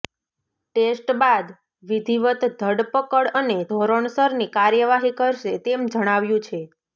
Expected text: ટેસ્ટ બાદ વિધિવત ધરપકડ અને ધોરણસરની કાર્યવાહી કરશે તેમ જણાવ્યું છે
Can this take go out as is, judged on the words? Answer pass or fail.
pass